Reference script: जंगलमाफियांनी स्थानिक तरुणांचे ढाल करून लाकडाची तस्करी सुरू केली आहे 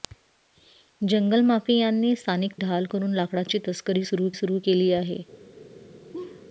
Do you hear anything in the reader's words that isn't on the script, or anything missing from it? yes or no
yes